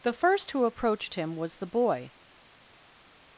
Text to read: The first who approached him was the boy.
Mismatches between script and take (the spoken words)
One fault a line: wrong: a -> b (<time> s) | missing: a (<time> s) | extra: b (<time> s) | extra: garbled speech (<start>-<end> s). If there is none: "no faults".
no faults